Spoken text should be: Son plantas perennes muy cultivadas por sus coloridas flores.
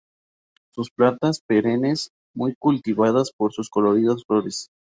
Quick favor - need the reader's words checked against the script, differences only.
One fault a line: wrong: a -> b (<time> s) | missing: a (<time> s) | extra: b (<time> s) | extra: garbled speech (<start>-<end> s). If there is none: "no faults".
no faults